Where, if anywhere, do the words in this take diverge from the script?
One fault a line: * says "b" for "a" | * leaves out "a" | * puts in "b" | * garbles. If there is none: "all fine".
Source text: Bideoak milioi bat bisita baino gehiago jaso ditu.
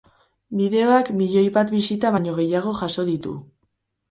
all fine